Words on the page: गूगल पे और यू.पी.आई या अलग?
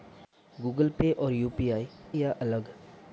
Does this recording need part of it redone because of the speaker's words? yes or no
no